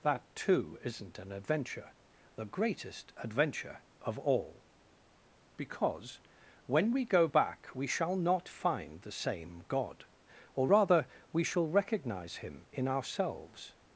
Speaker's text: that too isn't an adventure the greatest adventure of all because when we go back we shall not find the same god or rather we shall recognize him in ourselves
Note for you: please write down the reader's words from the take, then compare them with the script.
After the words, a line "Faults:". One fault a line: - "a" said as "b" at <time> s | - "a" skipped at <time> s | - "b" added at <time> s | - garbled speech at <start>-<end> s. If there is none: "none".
that too isn't an adventure the greatest adventure of all because when we go back we shall not find the same god or rather we shall recognize him in ourselves
Faults:
none